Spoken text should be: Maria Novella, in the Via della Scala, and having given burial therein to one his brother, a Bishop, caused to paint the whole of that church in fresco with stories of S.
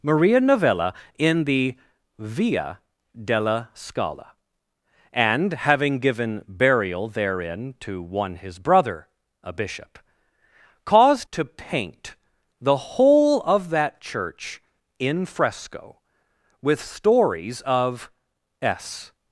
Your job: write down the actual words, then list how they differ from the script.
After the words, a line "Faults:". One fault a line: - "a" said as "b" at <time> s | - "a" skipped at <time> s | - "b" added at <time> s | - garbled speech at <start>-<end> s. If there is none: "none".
Maria Novella, in the Via della Scala, and having given burial therein to one his brother, a Bishop, caused to paint the whole of that church in fresco with stories of S.
Faults:
none